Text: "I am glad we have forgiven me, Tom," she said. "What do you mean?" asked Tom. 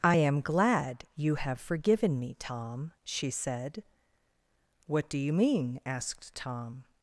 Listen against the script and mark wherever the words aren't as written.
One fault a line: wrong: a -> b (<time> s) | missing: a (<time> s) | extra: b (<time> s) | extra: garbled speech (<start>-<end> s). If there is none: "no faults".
wrong: we -> you (1.2 s)